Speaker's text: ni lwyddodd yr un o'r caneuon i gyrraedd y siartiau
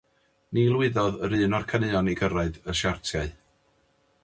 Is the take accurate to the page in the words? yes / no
yes